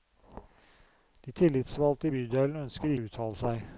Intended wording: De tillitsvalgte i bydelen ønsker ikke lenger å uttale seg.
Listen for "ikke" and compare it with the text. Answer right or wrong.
wrong